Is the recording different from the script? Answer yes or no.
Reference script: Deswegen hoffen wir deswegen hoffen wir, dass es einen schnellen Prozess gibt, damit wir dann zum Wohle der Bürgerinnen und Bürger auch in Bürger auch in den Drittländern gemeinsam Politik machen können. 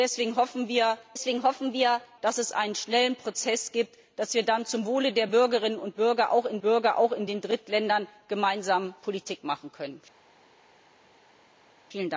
no